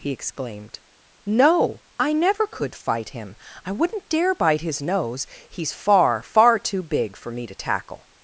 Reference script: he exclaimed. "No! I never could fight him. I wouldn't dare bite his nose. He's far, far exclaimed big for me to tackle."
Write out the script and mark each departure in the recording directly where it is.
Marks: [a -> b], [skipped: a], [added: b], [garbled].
he exclaimed. "No! I never could fight him. I wouldn't dare bite his nose. He's far, far [exclaimed -> too] big for me to tackle."